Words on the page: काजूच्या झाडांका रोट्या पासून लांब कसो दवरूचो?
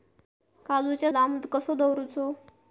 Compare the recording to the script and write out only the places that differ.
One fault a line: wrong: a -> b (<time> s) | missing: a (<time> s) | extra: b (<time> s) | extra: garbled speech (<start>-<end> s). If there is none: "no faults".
missing: झाडांका रोट्या पासून (1.1 s)